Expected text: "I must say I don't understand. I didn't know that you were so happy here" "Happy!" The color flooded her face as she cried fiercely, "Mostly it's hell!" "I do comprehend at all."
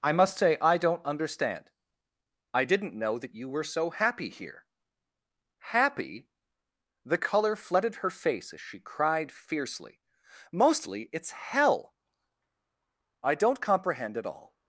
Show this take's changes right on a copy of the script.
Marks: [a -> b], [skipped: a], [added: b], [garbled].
"I must say I don't understand. I didn't know that you were so happy here" "Happy!" The color flooded her face as she cried fiercely, "Mostly it's hell!" "I [do -> don't] comprehend at all."